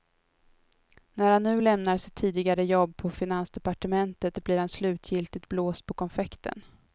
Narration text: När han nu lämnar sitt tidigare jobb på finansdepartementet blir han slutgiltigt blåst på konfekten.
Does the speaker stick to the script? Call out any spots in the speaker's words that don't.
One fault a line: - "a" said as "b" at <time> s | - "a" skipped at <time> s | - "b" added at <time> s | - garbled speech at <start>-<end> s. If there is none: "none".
none